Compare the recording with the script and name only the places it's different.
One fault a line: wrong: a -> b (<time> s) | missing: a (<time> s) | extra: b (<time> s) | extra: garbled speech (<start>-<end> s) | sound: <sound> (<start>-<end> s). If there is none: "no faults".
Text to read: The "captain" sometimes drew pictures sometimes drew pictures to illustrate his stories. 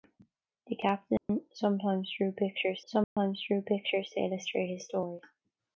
sound: dropout (1.2-1.3 s)
sound: dropout (3.0-3.2 s)